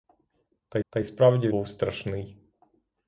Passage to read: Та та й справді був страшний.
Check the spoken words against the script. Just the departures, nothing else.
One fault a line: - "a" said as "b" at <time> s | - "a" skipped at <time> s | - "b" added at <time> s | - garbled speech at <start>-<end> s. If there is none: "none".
none